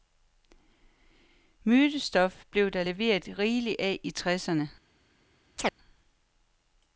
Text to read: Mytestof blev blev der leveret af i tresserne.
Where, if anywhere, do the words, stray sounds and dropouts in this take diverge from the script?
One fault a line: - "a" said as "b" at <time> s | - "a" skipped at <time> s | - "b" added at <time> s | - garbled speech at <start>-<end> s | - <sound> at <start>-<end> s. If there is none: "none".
- "blev" skipped at 2.7 s
- "rigeligt" added at 3.4 s
- chirp at 5.6-5.7 s